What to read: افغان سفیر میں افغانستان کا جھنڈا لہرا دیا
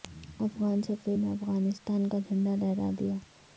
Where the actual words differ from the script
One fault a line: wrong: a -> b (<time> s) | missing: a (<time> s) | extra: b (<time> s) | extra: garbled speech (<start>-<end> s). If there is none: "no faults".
no faults